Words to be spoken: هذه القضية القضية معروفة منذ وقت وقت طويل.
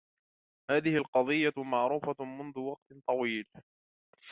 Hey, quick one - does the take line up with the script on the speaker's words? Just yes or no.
no